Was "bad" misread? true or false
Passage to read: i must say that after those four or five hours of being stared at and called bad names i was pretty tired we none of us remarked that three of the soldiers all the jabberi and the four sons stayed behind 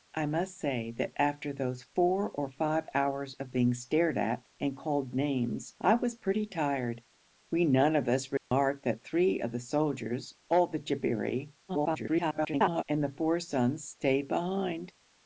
true